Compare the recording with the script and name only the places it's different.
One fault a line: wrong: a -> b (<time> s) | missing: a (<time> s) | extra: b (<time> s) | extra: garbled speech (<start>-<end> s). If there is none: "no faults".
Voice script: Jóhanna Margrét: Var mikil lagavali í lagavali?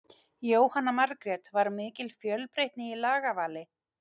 wrong: lagavali -> fjölbreytni (2.2 s)